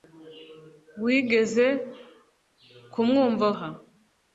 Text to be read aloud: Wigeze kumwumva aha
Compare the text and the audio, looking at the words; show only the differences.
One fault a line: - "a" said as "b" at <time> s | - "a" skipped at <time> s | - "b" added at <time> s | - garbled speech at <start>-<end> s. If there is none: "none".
none